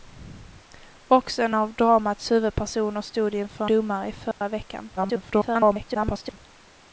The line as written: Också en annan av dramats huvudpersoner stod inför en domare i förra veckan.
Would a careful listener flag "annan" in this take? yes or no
yes